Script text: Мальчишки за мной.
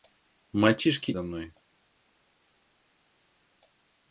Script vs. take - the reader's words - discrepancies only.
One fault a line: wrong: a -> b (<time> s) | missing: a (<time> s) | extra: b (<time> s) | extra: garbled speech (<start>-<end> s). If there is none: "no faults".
no faults